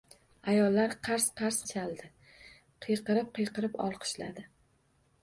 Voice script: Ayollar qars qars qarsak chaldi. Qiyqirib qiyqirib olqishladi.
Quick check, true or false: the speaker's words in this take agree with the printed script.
false